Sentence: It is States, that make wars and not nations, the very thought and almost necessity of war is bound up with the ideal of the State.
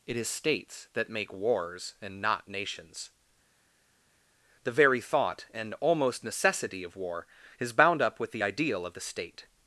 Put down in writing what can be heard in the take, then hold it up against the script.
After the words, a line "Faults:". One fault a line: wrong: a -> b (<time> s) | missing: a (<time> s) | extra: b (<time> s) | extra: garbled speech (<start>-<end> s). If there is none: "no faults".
It is States, that make wars and not nations, the very thought and almost necessity of war is bound up with the ideal of the State.
Faults:
no faults